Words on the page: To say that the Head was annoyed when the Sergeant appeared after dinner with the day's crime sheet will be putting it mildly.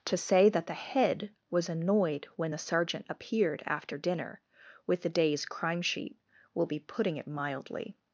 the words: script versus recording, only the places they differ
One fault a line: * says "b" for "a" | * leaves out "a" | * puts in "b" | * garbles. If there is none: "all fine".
all fine